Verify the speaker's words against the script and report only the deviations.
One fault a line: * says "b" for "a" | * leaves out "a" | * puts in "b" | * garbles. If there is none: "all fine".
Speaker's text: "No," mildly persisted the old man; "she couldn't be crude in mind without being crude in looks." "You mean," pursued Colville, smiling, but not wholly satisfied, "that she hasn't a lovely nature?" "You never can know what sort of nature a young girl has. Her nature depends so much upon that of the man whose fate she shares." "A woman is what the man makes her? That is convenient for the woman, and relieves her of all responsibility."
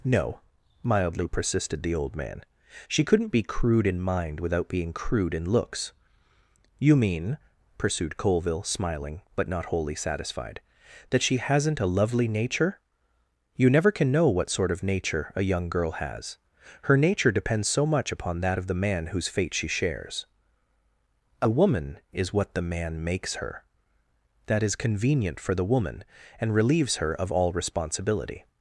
all fine